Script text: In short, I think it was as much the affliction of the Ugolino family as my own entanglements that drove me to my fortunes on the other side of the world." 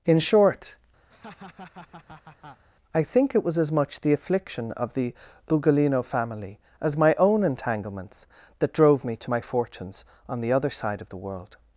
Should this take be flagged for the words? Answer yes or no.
no